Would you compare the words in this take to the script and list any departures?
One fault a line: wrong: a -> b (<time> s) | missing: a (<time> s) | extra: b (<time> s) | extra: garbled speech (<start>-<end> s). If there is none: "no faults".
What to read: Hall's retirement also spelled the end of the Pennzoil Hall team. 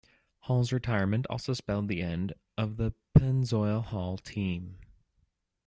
no faults